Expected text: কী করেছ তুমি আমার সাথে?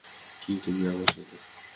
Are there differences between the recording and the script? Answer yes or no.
yes